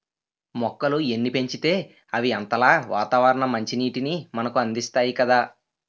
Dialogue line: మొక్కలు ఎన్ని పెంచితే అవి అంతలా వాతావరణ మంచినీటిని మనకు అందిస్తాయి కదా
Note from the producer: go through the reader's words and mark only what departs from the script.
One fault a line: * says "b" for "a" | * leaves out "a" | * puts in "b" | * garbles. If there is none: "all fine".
all fine